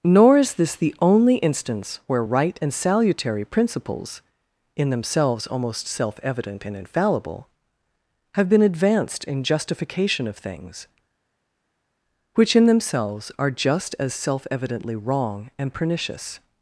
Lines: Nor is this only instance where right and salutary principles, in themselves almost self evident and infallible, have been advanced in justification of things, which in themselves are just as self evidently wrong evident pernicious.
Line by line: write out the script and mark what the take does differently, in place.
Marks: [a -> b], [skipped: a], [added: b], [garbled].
Nor is this [added: the] only instance where right and salutary principles, in themselves almost self evident and infallible, have been advanced in justification of things, which in themselves are just as self evidently wrong [evident -> and] pernicious.